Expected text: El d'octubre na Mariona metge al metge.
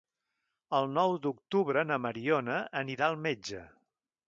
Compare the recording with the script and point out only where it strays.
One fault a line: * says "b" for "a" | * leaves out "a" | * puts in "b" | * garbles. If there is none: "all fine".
* puts in "nou"
* says "anirà" for "metge"